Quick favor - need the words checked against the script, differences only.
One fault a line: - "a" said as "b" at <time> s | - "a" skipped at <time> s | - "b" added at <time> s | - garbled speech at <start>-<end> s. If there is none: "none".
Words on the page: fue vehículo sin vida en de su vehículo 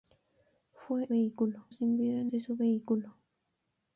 none